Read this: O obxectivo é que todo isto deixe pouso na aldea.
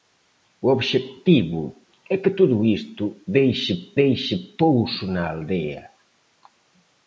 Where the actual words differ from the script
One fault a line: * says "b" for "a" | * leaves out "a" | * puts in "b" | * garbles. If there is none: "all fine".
* puts in "deixe"